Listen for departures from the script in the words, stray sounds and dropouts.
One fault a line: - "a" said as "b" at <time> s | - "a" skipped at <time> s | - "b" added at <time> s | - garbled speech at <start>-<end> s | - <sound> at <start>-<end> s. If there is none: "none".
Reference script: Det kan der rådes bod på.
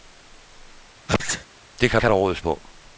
- sneeze at 1.1-1.5 s
- "kan" added at 2.0 s
- "bod" skipped at 2.4 s